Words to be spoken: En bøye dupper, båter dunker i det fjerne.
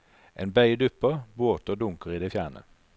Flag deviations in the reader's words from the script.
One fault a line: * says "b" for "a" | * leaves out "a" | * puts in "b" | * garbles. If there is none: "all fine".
all fine